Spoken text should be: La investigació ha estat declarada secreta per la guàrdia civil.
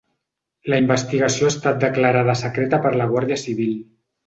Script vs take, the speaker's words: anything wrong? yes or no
no